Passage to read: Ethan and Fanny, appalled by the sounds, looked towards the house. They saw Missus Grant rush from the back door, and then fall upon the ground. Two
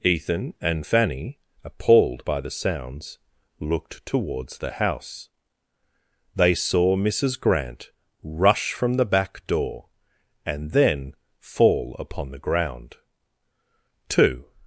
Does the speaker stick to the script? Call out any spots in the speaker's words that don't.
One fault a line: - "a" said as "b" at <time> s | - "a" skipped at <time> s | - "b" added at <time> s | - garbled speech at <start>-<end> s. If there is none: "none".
none